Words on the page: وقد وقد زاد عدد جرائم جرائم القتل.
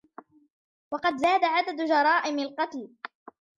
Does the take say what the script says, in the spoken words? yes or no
no